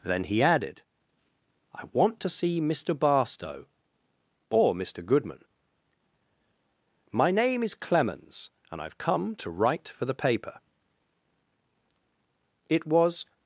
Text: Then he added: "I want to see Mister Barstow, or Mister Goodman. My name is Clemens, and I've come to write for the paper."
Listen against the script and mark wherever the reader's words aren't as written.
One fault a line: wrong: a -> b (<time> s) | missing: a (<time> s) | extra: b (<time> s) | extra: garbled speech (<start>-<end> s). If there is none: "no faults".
extra: It was (12.7 s)